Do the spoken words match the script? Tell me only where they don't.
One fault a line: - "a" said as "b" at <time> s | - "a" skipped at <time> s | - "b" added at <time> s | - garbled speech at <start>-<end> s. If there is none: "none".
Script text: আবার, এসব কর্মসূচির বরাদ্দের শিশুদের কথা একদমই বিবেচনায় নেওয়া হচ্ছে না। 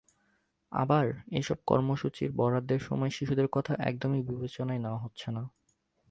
- "সময়" added at 2.8 s